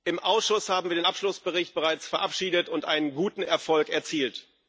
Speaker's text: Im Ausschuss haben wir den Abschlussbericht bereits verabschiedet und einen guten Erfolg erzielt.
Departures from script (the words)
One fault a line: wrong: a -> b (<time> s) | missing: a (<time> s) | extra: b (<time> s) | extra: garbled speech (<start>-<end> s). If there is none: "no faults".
no faults